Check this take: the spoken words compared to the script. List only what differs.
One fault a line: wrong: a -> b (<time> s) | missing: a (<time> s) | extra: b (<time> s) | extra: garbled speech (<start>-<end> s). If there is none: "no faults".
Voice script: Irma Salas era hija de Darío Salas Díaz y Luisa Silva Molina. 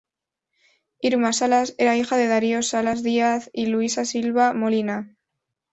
no faults